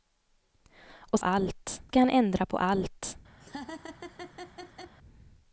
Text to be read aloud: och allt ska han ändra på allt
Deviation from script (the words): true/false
false